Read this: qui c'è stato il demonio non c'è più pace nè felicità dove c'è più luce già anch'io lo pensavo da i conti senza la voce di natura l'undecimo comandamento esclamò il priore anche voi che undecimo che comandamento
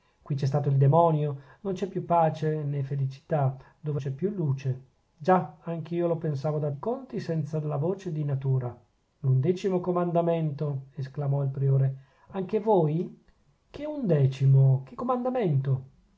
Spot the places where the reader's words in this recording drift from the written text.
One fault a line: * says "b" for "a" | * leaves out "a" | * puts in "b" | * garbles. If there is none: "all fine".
all fine